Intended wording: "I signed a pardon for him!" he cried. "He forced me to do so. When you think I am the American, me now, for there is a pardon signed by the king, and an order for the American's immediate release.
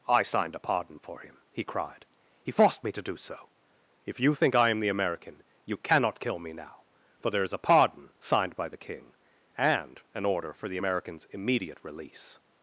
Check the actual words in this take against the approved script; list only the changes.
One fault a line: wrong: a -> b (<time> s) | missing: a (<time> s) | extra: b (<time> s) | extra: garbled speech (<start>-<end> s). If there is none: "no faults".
wrong: When -> If (4.1 s)
extra: you cannot kill (5.6 s)